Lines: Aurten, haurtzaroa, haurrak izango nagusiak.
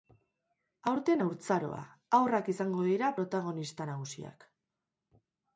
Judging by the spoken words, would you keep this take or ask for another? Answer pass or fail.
fail